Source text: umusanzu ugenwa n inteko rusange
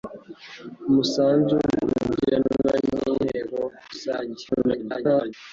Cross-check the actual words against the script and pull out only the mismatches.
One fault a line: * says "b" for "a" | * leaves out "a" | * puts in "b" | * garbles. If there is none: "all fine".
* garbles